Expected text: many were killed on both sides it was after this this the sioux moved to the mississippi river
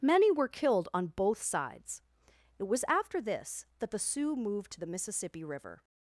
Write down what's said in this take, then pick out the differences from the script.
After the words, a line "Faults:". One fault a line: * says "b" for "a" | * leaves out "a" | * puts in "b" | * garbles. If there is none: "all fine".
many were killed on both sides it was after this that the sioux moved to the mississippi river
Faults:
* says "that" for "this"